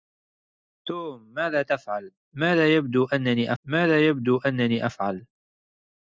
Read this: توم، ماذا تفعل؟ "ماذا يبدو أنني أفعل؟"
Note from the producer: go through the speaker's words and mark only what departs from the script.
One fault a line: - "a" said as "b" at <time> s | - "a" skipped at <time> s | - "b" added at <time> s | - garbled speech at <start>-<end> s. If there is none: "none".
- "ماذا يبدو أنني" added at 3.6 s